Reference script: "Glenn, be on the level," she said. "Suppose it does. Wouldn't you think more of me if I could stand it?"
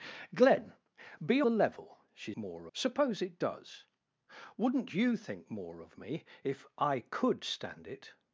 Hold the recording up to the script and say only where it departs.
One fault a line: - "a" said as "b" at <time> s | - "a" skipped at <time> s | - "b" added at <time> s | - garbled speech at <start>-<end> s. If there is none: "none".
- "on" skipped at 1.4 s
- "said" said as "more" at 2.3 s